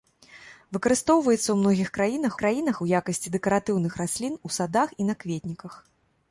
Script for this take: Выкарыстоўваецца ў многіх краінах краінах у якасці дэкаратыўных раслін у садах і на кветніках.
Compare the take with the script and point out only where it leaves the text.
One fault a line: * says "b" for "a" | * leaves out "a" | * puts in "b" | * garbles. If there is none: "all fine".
all fine